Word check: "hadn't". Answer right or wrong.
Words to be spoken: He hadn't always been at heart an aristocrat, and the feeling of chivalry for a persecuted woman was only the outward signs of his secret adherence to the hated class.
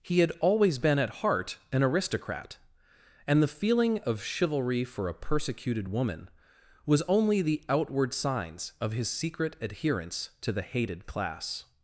wrong